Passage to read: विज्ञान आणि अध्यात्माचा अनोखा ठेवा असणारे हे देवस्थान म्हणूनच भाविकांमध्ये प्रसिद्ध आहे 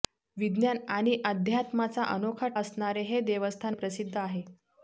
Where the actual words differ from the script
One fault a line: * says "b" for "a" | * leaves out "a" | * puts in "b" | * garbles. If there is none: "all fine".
* leaves out "ठेवा"
* leaves out "म्हणूनच भाविकांमध्ये"